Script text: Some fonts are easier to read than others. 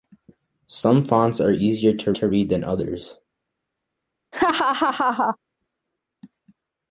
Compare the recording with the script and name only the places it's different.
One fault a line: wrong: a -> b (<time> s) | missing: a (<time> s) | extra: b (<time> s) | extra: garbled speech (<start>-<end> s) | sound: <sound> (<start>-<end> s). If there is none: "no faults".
extra: to (2.1 s)
sound: laugh (4.3-5.4 s)